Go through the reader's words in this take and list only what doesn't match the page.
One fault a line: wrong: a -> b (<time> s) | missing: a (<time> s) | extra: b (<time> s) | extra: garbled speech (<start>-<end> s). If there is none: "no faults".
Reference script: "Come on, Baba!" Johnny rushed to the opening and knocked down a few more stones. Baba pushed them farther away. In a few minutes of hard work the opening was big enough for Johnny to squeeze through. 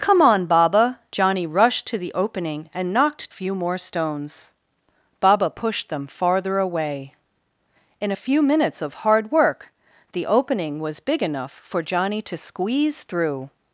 missing: down a (3.3 s)